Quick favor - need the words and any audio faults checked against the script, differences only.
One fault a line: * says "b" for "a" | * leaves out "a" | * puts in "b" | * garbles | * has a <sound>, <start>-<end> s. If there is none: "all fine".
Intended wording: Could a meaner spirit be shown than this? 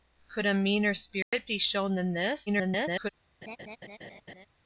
* has a dropout, 1.2-1.3 s
* garbles
* has a laugh, 3.4-4.5 s